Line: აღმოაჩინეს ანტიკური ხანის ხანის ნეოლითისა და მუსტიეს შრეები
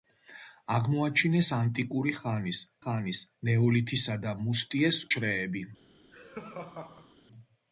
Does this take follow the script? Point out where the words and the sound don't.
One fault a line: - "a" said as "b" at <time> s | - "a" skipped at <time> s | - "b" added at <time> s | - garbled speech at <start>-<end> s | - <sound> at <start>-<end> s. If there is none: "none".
- laugh at 6.1-7.2 s